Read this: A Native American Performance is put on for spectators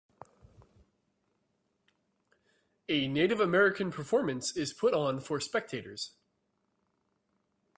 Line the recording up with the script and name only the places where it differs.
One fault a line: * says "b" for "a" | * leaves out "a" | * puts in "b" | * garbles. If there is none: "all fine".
all fine